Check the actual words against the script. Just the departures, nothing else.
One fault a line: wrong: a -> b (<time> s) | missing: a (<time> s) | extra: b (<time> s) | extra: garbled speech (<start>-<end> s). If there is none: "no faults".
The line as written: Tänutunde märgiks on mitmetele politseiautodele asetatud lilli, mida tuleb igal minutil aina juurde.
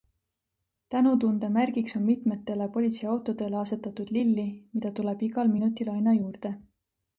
no faults